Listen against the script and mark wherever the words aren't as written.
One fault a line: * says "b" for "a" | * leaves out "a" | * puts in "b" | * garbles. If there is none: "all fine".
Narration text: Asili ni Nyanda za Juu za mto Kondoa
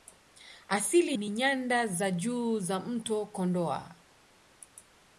all fine